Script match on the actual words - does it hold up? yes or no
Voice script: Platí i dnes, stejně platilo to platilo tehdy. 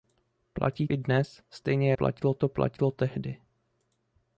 yes